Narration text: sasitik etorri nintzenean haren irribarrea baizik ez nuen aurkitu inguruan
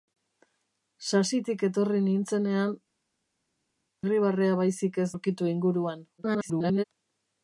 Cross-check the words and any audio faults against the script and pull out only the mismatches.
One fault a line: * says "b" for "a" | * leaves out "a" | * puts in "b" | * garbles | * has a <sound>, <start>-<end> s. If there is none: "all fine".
* leaves out "haren"
* leaves out "nuen"
* garbles